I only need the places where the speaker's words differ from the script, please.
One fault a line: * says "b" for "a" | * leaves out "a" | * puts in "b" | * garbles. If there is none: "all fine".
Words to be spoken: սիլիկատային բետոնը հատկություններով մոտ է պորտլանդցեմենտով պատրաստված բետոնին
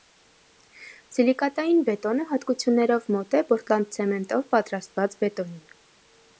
all fine